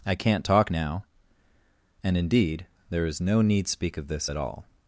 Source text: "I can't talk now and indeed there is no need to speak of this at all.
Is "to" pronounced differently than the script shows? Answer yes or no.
yes